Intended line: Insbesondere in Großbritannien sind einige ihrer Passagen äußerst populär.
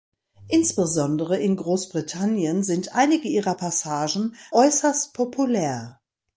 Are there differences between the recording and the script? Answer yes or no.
no